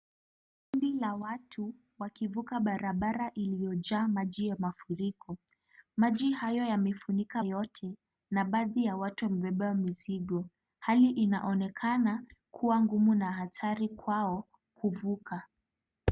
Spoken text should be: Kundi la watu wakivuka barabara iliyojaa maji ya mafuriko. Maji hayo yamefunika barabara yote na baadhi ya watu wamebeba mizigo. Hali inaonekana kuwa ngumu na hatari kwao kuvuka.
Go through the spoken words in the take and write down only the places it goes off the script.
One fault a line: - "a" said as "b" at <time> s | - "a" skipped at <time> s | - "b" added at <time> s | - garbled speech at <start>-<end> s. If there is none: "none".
- "barabara" skipped at 7.4 s